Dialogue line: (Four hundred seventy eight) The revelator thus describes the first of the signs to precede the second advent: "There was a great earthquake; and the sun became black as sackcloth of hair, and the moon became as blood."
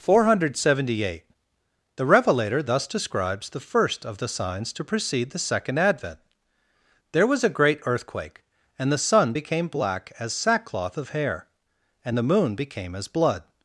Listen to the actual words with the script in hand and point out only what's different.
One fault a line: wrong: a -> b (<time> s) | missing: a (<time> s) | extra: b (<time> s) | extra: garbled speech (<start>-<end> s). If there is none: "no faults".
no faults